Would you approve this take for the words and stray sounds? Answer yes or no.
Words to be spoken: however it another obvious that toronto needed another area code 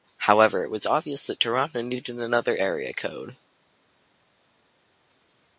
no